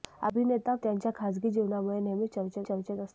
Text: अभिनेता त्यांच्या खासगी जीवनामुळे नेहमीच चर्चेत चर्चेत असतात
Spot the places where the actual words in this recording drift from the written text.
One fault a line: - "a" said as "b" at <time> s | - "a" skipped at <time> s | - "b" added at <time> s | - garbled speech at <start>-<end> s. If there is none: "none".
none